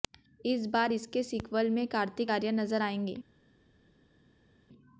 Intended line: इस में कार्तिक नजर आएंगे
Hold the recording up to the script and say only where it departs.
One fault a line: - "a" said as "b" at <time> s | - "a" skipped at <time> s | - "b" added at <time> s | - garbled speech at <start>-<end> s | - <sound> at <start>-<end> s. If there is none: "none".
- "बार इसके सीक्वल" added at 0.7 s
- "आर्यन" added at 2.3 s